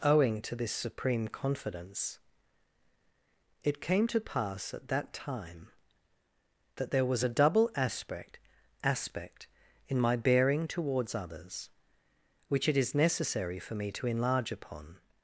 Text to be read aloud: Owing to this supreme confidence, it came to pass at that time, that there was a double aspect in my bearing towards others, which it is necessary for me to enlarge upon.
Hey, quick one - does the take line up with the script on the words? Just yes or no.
no